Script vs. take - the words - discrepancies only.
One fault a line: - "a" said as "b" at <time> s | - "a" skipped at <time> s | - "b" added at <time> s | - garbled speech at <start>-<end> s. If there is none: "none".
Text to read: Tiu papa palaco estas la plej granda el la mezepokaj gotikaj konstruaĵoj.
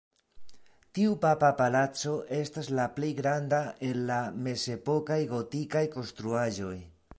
none